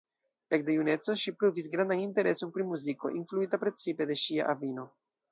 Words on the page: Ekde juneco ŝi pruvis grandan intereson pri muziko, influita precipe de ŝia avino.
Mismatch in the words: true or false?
false